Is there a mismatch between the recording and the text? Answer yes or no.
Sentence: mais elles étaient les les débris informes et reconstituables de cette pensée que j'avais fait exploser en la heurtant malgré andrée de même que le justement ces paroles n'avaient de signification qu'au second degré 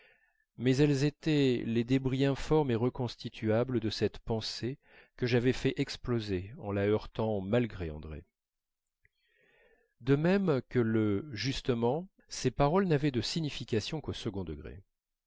yes